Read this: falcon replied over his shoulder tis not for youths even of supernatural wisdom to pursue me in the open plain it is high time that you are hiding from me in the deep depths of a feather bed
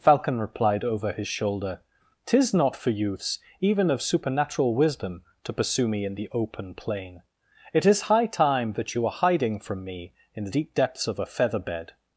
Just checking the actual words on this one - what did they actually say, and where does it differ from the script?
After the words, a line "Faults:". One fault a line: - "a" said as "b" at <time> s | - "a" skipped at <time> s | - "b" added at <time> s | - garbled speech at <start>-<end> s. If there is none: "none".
falcon replied over his shoulder tis not for youths even of supernatural wisdom to pursue me in the open plain it is high time that you are hiding from me in the deep depths of a feather bed
Faults:
none